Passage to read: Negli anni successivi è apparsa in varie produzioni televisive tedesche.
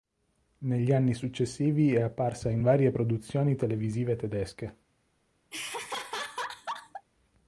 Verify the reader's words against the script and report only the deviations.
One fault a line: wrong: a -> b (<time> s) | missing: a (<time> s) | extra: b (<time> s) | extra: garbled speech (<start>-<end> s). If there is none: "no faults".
no faults